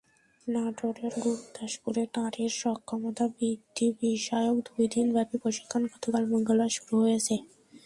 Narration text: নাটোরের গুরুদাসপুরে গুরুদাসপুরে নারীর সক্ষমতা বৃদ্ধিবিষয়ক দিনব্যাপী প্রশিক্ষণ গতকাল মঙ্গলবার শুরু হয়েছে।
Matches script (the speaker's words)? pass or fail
fail